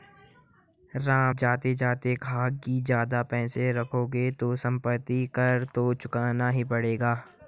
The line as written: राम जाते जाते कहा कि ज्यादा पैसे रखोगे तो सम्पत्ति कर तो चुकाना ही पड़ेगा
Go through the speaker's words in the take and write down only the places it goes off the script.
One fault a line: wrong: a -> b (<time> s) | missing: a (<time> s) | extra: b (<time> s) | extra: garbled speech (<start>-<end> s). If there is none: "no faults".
no faults